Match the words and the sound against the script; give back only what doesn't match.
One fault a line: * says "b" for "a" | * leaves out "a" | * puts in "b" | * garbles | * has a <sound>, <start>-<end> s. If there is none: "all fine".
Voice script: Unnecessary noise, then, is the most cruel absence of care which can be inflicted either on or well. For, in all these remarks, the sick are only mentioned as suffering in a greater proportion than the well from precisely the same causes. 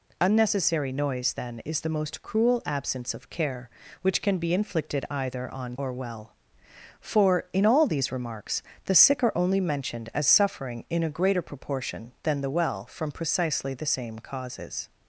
all fine